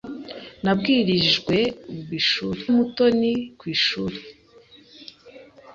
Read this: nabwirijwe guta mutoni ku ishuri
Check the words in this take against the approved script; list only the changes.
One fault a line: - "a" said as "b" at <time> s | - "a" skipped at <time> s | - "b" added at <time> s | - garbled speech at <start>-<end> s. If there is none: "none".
- "guta" said as "ishuri" at 2.2 s